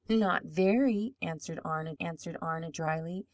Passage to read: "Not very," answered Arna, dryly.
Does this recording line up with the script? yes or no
no